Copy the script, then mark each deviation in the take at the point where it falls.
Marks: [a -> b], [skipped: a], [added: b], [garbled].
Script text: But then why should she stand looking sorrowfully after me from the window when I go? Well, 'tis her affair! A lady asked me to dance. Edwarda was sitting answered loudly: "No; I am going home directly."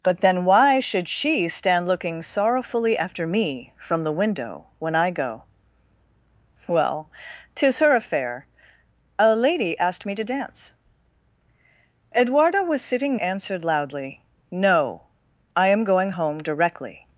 But then why should she stand looking sorrowfully after me from the window when I go? Well, 'tis her affair! A lady asked me to dance. Edwarda was sitting answered loudly: "No; I am going home directly."